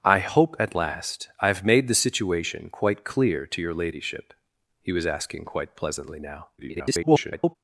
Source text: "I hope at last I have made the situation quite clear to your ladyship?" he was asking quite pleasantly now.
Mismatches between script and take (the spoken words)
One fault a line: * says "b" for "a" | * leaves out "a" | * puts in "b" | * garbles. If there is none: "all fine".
* garbles